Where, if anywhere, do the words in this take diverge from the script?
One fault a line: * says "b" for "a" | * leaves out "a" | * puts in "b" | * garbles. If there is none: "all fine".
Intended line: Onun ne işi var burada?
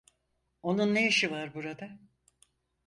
all fine